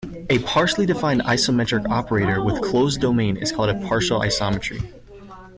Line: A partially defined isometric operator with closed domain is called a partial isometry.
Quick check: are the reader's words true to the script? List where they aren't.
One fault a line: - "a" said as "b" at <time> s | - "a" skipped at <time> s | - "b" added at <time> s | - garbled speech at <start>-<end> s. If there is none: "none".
none